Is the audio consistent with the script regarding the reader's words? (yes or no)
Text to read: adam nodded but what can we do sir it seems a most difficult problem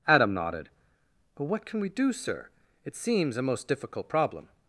yes